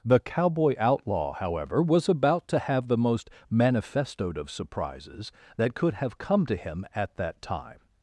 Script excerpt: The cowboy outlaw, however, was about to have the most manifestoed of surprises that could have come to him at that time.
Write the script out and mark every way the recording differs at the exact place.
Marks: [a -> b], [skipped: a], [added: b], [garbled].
The cowboy outlaw, however, was about to have the most manifestoed of surprises that could have come to him at that time.